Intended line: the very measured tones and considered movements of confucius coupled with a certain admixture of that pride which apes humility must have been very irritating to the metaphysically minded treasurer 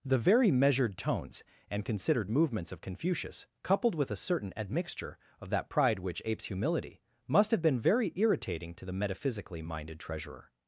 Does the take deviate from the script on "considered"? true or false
false